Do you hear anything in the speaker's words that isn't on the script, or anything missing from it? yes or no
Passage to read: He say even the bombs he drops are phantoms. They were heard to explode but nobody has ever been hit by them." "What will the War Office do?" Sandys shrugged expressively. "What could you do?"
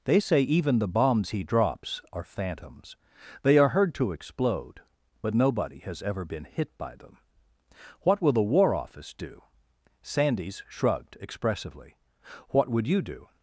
yes